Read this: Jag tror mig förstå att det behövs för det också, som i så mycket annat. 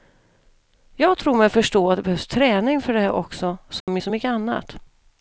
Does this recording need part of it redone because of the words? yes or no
yes